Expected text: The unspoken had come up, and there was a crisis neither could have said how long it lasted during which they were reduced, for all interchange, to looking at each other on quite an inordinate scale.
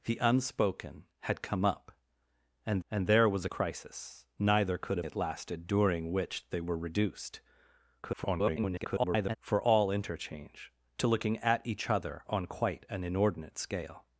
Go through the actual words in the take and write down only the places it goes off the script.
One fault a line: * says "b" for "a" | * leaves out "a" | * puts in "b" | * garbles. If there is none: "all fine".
* puts in "and"
* leaves out "said how long"
* garbles